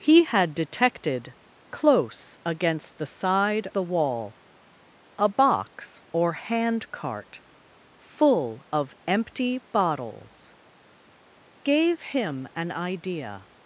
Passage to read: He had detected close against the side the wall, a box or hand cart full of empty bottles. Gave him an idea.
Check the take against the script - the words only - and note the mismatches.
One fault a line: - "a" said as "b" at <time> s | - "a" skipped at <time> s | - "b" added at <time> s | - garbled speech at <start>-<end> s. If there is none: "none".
none